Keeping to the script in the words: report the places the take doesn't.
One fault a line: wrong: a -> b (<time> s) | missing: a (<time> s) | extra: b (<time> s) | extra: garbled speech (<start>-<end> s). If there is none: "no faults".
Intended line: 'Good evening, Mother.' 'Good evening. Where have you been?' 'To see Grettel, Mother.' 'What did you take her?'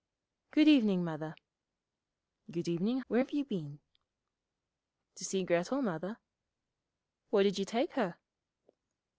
no faults